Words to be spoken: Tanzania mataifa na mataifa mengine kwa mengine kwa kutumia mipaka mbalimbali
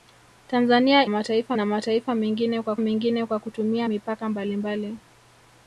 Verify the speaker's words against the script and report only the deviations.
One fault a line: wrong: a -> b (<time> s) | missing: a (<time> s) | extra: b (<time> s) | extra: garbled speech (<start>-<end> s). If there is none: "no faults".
no faults